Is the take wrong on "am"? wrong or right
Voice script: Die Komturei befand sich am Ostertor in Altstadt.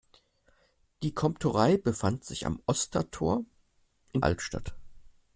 right